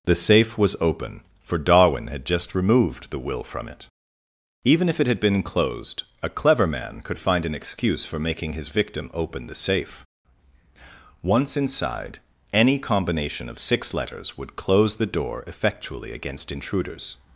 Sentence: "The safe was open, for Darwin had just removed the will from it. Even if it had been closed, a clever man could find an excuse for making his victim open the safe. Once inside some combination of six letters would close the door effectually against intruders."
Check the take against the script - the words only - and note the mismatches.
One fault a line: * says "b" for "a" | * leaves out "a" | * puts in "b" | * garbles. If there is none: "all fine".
* says "any" for "some"